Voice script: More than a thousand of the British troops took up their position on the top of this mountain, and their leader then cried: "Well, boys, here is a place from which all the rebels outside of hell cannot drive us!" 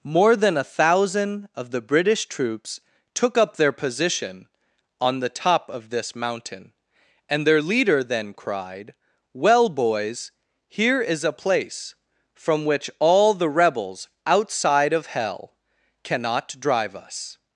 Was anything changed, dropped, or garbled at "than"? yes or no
no